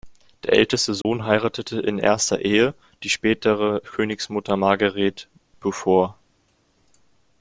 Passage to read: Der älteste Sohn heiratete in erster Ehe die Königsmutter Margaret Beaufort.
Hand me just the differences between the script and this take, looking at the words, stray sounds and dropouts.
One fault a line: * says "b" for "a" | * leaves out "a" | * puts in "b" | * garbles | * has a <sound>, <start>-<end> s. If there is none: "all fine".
* has a dropout, 1.0-1.1 s
* puts in "spätere"